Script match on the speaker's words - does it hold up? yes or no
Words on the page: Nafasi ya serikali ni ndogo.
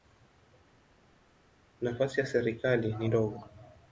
yes